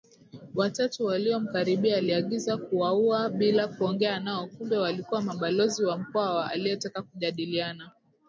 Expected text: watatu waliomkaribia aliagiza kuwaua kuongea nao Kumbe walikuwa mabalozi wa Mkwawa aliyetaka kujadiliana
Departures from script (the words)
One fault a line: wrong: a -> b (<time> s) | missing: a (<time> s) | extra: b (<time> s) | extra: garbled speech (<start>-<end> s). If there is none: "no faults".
extra: bila (3.3 s)